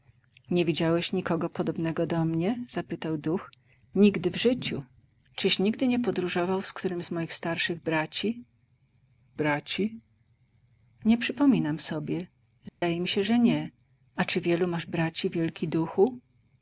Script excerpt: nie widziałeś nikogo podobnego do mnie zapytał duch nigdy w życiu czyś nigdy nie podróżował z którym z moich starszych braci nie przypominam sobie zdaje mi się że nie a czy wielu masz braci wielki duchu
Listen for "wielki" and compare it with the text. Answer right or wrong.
right